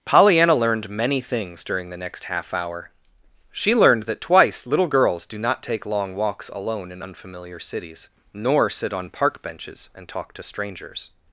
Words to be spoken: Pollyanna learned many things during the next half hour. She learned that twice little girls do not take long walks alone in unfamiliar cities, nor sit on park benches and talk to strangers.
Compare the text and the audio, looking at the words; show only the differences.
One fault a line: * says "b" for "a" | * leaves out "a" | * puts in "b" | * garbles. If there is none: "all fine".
all fine